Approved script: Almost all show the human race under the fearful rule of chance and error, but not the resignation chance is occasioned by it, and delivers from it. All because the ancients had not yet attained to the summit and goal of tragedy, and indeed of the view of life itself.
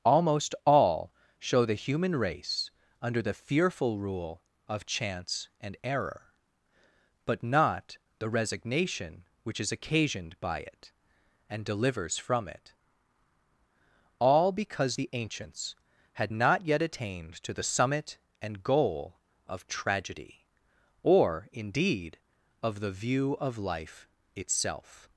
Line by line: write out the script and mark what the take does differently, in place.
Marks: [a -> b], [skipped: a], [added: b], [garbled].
Almost all show the human race under the fearful rule of chance and error, but not the resignation [chance -> which] is occasioned by it, and delivers from it. All because the ancients had not yet attained to the summit and goal of tragedy, [and -> or] indeed of the view of life itself.